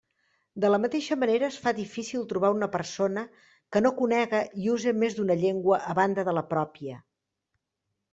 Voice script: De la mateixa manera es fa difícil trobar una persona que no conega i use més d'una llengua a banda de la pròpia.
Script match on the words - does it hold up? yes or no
yes